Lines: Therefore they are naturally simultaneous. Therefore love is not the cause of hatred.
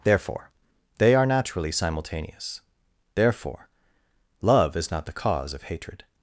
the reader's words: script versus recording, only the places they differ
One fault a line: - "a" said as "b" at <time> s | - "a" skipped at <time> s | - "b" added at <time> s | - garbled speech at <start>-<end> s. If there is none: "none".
none